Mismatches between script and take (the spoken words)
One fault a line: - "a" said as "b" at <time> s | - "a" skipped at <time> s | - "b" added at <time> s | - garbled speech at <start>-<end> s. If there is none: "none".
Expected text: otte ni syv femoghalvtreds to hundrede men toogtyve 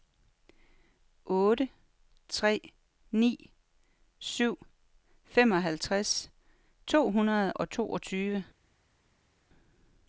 - "tre" added at 2.3 s
- "men" said as "og" at 7.5 s